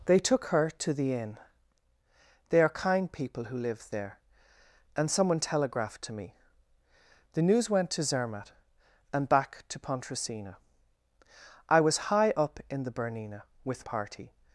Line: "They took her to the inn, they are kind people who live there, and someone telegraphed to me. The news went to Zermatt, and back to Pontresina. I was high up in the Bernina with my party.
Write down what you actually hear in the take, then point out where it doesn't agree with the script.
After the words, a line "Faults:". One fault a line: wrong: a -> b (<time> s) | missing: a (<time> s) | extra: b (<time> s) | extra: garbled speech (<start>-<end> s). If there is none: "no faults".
"They took her to the inn, they are kind people who live there, and someone telegraphed to me. The news went to Zermatt, and back to Pontresina. I was high up in the Bernina with party.
Faults:
missing: my (13.9 s)